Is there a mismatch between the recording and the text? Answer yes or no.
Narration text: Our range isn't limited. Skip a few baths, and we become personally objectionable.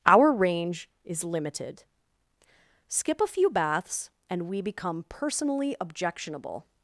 yes